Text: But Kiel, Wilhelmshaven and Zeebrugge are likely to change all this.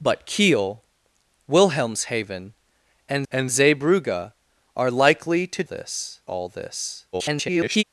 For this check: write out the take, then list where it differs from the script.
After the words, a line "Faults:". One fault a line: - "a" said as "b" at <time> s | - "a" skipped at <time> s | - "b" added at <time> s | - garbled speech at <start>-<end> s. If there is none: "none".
But Kiel, Wilhelmshaven and and Zeebrugge are likely to this all this. [garbled]
Faults:
- "and" added at 3.3 s
- "change" said as "this" at 5.6 s
- garbled speech at 7.1-7.8 s